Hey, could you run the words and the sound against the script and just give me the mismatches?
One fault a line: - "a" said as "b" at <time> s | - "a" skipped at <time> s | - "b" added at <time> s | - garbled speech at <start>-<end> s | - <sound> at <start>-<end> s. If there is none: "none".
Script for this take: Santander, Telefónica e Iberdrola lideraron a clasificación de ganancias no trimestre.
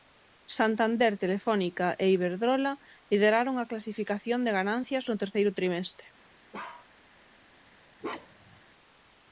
- "terceiro" added at 5.2 s
- bark at 6.5-6.9 s
- bark at 8.0-8.6 s